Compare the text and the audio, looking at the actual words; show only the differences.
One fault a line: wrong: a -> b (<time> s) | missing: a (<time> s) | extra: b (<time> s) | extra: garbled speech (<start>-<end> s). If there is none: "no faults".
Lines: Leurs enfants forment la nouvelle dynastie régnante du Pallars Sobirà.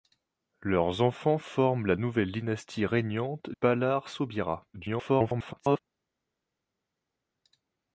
missing: du (3.5 s)
extra: garbled speech (4.7-5.8 s)